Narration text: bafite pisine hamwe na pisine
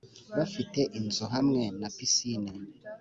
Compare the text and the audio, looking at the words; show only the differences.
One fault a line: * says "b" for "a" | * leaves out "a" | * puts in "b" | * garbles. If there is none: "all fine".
* says "inzu" for "pisine"